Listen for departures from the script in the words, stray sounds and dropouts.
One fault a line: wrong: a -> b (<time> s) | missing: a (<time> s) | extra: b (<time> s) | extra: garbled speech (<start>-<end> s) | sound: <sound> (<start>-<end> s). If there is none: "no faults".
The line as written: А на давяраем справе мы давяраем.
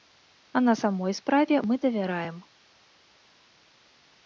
wrong: давяраем -> самой (0.7 s)